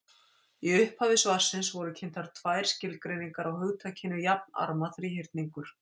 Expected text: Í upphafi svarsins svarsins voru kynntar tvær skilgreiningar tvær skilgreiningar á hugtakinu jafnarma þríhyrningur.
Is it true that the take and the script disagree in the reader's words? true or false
true